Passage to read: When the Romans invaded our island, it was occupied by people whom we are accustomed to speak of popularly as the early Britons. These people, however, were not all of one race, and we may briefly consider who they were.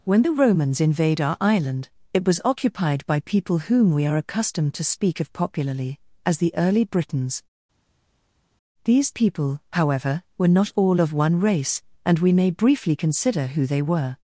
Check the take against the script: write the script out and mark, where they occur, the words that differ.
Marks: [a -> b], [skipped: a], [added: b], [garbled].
When the Romans [invaded -> invade] our island, it was occupied by people whom we are accustomed to speak of popularly as the early Britons. These people, however, were not all of one race, and we may briefly consider who they were.